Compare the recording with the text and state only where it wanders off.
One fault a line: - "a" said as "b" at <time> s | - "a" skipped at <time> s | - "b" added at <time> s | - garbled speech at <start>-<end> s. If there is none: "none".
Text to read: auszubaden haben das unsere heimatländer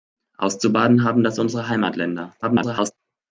- garbled speech at 2.4-2.9 s